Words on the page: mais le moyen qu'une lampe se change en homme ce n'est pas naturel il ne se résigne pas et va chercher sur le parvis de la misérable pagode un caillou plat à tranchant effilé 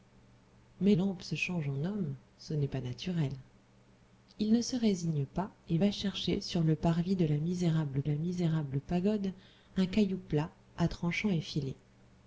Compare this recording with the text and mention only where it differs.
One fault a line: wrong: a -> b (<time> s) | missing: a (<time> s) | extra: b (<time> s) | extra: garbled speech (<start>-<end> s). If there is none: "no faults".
missing: le moyen qu'une (0.9 s)
extra: la misérable (8.0 s)